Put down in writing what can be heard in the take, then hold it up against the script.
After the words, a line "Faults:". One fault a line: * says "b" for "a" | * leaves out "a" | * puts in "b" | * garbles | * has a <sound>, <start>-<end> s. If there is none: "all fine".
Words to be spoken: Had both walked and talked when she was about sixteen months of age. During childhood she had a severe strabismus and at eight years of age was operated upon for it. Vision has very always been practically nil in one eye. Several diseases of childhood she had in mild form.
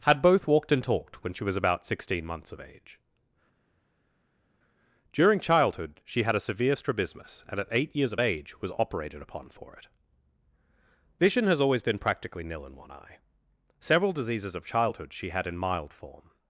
Had both walked and talked when she was about sixteen months of age. During childhood she had a severe strabismus and at eight years of age was operated upon for it. Vision has always been practically nil in one eye. Several diseases of childhood she had in mild form.
Faults:
* leaves out "very"